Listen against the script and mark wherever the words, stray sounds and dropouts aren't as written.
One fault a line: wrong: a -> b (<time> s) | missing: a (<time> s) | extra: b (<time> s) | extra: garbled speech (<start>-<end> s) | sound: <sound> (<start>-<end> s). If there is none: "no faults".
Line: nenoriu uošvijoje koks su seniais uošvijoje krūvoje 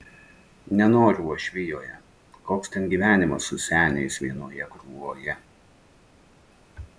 extra: ten gyvenimas (2.8 s)
wrong: uošvijoje -> vienoje (4.3 s)